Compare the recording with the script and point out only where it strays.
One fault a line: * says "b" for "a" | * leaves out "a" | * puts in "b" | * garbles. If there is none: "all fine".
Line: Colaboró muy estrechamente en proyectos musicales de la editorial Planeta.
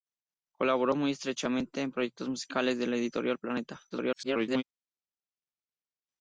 * garbles